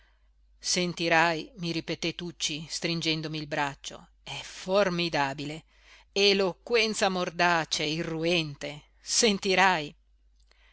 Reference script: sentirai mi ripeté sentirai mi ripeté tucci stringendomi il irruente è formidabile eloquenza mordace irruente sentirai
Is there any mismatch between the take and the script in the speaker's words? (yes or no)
yes